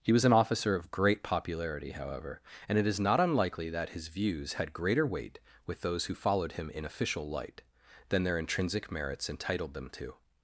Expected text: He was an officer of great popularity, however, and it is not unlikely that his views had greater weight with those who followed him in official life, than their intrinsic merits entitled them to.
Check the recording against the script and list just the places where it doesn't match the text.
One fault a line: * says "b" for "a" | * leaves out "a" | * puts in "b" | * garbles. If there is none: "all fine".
* says "light" for "life"